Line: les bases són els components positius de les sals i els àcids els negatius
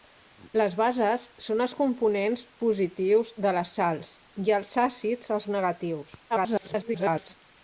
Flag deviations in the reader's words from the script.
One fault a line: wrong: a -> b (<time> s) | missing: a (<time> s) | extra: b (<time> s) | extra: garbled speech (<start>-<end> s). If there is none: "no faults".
extra: garbled speech (6.3-7.3 s)